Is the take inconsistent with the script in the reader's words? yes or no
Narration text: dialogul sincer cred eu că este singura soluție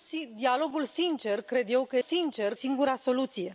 yes